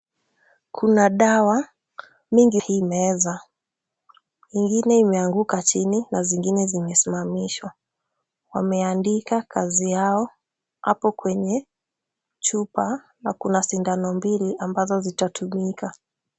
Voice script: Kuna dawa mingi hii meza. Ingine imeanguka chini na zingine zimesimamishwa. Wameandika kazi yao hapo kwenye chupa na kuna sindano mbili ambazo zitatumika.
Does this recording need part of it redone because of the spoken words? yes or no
no